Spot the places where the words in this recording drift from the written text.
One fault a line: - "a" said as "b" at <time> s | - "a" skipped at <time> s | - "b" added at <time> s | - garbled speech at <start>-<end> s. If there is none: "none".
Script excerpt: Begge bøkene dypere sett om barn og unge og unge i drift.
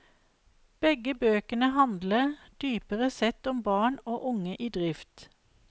- "handler" added at 1.8 s
- "og unge" skipped at 4.6 s